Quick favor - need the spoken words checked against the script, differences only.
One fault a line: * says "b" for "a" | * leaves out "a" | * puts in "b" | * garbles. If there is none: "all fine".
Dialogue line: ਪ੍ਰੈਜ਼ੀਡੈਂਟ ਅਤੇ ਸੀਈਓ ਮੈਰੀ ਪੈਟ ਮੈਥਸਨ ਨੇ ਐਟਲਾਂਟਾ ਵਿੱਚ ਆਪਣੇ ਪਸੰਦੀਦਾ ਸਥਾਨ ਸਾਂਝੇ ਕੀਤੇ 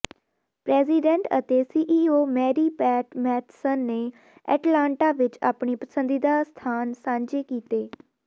all fine